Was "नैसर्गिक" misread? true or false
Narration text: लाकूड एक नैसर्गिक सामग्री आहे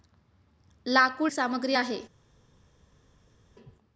true